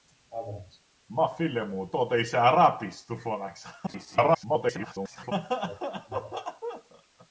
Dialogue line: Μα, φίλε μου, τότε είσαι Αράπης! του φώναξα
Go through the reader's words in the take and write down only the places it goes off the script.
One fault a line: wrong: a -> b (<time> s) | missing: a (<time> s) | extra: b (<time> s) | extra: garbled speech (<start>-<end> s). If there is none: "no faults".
extra: garbled speech (3.9-5.3 s)